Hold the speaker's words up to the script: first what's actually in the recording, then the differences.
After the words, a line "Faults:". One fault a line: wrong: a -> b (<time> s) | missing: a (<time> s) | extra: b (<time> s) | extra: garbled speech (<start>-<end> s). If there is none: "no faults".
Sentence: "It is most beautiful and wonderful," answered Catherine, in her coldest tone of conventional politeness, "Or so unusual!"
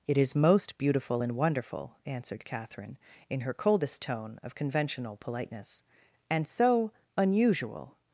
"It is most beautiful and wonderful," answered Catherine, in her coldest tone of conventional politeness, "And so unusual!"
Faults:
wrong: Or -> And (6.3 s)